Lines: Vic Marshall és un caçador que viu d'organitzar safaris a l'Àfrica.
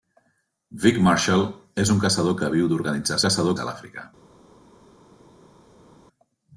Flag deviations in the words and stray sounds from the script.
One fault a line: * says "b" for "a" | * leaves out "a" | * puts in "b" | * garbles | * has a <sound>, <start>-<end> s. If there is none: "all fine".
* says "caçador" for "safaris"